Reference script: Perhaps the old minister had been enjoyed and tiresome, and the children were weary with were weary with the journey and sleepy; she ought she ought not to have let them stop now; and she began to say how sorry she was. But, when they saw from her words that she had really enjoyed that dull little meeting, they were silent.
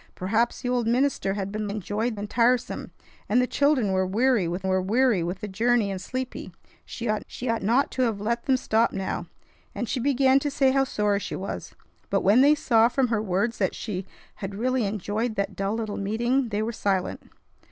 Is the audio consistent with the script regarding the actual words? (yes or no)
yes